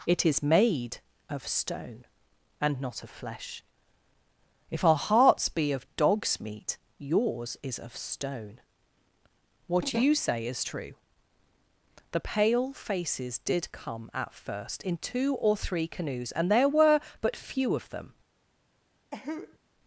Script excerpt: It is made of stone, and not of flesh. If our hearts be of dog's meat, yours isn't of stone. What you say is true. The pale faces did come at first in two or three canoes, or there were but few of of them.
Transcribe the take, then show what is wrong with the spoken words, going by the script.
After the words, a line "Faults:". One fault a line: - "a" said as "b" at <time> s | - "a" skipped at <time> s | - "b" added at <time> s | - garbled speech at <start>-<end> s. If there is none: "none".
It is made of stone, and not of flesh. If our hearts be of dog's meat, yours is of stone. What you say is true. The pale faces did come at first in two or three canoes, and there were but few of them.
Faults:
- "isn't" said as "is" at 7.6 s
- "or" said as "and" at 16.3 s
- "of" skipped at 17.9 s